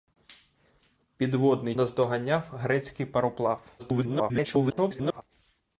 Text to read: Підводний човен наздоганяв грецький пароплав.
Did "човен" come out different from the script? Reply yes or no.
yes